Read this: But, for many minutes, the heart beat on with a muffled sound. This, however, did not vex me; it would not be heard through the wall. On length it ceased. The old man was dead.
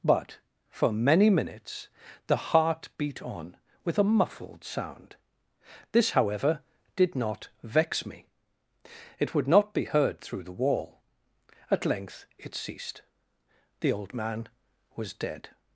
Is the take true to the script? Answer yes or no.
no